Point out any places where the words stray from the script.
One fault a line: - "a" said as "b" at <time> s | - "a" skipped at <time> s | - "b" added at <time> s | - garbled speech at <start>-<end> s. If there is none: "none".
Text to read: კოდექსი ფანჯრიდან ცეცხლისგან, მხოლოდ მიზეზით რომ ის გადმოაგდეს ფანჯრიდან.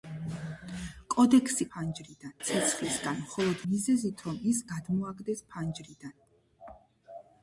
none